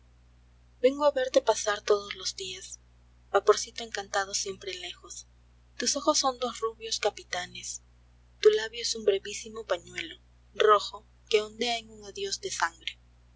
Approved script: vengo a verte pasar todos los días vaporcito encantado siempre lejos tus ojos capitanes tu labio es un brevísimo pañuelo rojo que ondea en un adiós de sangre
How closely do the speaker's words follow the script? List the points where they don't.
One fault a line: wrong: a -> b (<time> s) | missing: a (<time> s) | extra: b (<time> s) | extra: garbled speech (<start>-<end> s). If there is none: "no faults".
extra: son dos rubios (6.2 s)